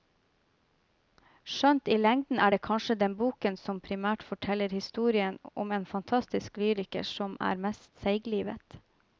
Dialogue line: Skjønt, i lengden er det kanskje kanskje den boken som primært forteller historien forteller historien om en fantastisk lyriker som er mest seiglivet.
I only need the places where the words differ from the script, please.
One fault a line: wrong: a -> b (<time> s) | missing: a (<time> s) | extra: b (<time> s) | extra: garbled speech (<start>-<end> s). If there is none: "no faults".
missing: kanskje (3.0 s)
missing: forteller historien (5.4 s)